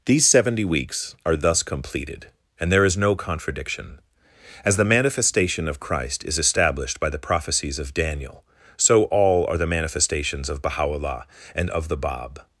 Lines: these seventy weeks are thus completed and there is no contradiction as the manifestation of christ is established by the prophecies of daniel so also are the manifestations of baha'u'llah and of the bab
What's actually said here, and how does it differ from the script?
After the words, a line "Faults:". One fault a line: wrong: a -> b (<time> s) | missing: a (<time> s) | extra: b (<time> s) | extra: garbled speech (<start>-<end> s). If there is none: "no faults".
these seventy weeks are thus completed and there is no contradiction as the manifestation of christ is established by the prophecies of daniel so all are the manifestations of baha'u'llah and of the bab
Faults:
wrong: also -> all (9.1 s)